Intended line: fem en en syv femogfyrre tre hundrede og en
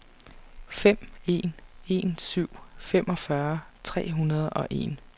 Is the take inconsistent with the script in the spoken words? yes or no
no